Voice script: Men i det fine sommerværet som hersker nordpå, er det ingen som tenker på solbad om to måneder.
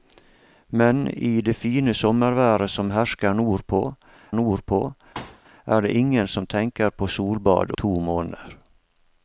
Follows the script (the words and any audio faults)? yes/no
no